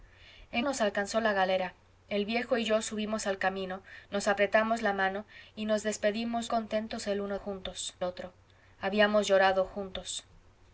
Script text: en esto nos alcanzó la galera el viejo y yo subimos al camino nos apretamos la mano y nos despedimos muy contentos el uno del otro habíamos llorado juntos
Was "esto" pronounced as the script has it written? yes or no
no